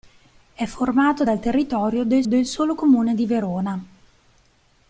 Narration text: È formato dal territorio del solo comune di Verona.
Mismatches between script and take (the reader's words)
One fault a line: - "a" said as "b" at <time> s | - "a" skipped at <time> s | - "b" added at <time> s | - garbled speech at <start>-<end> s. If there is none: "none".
- "del" added at 2.3 s